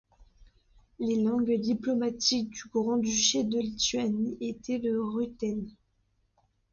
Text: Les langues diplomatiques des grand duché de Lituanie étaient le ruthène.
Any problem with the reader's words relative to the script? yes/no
yes